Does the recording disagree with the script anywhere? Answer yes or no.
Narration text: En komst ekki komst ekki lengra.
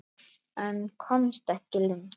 yes